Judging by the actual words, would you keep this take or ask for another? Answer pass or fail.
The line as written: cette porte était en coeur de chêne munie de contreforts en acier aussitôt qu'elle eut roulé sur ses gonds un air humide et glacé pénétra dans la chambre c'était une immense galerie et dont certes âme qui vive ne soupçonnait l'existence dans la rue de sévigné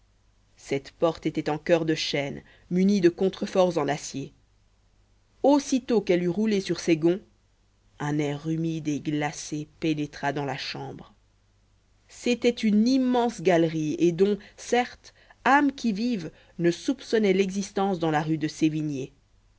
pass